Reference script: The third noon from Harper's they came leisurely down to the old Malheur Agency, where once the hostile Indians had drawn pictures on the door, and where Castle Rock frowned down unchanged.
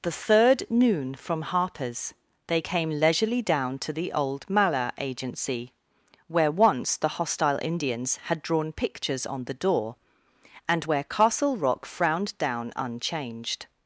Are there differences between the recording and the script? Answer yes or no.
no